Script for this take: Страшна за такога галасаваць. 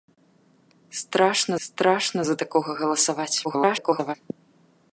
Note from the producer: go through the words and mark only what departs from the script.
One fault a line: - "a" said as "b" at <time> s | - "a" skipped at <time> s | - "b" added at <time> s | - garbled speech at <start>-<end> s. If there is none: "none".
- "страшна" added at 1.7 s
- garbled speech at 3.4-4.2 s